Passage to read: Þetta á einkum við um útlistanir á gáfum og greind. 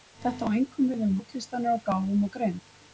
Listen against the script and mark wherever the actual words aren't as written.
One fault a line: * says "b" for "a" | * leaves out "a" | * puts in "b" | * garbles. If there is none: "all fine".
all fine